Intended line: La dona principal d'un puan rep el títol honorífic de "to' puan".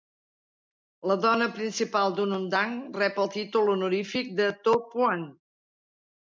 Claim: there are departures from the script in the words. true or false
true